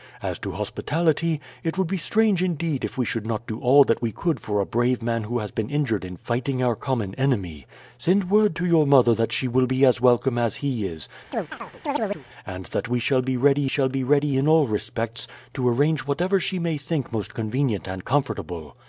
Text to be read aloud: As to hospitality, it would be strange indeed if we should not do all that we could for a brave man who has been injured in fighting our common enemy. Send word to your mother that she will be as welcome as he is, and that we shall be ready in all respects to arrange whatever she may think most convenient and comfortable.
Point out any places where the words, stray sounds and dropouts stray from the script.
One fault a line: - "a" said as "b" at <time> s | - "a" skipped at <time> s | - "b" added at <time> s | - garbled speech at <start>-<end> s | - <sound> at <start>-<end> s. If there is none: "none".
- chirp at 11.3-12.3 s
- "shall be ready" added at 13.7 s